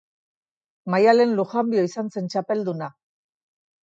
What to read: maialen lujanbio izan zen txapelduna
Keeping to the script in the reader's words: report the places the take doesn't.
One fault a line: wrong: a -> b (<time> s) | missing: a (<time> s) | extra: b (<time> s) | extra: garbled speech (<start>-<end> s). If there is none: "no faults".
no faults